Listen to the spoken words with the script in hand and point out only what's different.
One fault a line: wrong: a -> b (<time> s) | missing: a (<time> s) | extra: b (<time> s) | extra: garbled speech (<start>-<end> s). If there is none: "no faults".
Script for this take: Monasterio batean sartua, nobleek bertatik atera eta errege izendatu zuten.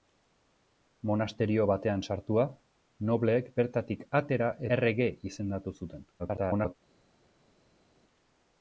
missing: eta (4.5 s)
extra: garbled speech (6.2-6.7 s)